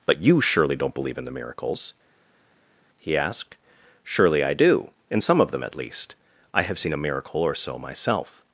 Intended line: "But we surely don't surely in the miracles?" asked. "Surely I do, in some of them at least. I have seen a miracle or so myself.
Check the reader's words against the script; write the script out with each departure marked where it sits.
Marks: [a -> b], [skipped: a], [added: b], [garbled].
"But [we -> you] surely don't [surely -> believe] in the miracles?" [added: he] asked. "Surely I do, in some of them at least. I have seen a miracle or so myself.